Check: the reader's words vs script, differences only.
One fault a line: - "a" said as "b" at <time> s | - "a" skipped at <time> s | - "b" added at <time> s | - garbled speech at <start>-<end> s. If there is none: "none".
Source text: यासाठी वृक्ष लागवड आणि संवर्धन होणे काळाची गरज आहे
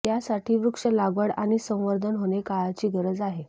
none